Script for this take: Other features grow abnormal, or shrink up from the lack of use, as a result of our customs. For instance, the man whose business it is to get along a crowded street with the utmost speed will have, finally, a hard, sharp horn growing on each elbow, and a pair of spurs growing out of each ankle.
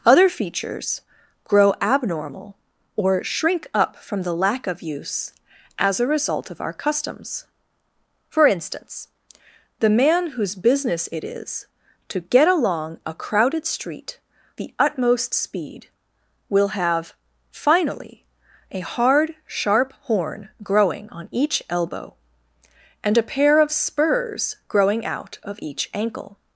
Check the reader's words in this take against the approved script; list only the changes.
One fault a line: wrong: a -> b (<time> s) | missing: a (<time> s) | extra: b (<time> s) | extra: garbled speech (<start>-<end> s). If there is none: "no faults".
missing: with (14.2 s)